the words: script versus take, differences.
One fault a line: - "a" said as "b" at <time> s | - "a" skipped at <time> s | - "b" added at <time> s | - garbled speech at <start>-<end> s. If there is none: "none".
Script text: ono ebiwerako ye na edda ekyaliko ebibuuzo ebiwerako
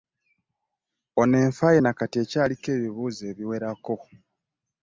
- "ebiwerako" said as "enfa" at 1.4 s
- "edda" said as "kati" at 2.0 s